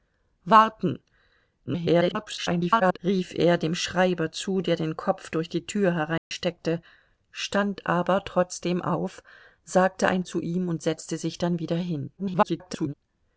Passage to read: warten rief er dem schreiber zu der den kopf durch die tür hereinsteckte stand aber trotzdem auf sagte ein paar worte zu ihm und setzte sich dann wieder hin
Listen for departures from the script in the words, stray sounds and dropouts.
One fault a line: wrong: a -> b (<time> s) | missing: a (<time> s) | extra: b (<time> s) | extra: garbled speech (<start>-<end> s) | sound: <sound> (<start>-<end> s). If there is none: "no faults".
extra: garbled speech (1.7-3.0 s)
sound: dropout (6.2-6.3 s)
missing: paar worte (10.2 s)
extra: garbled speech (12.2-12.9 s)